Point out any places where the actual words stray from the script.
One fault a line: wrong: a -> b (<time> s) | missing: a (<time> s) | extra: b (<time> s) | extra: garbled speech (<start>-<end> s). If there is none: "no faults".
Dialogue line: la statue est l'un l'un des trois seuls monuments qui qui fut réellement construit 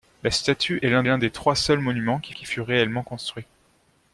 no faults